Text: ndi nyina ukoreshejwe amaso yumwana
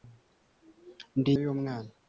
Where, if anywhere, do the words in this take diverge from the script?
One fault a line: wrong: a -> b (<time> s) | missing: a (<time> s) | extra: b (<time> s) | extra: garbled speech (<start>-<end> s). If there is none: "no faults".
missing: nyina ukoreshejwe amaso (1.3 s)